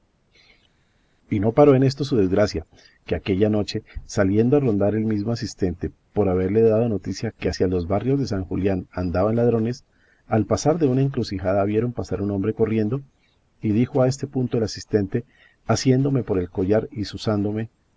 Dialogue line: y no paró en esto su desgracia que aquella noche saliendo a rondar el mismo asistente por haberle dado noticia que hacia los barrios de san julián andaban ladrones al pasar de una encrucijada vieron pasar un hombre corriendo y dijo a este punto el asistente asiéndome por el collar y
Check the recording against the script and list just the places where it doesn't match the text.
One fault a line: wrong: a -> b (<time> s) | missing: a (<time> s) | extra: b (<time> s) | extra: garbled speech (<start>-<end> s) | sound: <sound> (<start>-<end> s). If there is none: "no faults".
no faults